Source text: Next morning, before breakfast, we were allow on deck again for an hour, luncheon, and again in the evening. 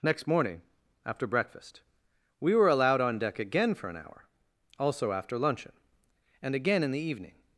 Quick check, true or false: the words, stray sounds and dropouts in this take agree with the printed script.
false